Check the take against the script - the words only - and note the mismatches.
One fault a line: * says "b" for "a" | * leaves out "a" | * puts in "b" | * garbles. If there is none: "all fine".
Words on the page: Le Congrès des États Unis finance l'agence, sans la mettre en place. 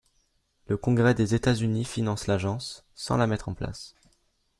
all fine